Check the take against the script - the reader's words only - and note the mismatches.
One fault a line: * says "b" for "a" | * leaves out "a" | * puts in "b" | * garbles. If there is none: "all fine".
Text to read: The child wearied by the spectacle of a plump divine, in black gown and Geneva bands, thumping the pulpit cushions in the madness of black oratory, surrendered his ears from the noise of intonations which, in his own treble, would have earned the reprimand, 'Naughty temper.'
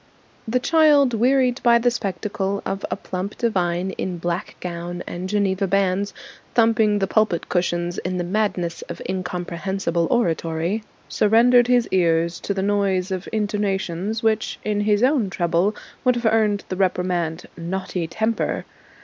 * says "incomprehensible" for "black"
* says "to" for "from"